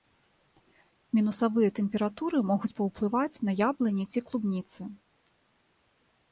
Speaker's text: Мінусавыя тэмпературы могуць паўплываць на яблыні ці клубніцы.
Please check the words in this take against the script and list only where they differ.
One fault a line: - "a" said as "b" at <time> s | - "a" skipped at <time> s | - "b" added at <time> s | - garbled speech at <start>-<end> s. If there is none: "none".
none